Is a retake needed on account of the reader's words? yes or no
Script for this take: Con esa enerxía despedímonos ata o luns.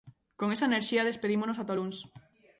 no